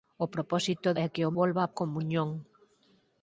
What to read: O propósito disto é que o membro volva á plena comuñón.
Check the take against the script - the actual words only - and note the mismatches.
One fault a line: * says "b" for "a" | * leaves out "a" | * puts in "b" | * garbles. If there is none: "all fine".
* leaves out "disto"
* leaves out "membro"
* leaves out "plena"